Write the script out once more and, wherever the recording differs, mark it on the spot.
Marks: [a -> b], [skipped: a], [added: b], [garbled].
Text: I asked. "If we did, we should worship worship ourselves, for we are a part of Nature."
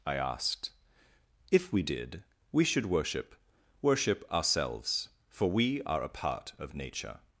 I asked. "If we did, we should worship worship ourselves, for we are a part of Nature."